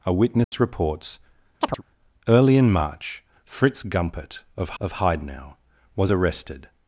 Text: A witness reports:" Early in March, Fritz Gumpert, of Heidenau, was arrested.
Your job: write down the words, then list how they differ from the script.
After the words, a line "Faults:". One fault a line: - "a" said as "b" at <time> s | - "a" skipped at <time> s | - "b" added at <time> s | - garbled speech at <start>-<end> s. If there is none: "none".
A witness reports:" Early in March, Fritz Gumpert, of of Heidenau, was arrested.
Faults:
- "of" added at 4.8 s